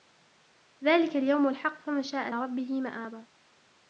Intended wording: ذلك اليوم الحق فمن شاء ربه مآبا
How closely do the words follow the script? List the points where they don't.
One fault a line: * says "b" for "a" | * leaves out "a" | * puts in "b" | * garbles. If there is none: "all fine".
all fine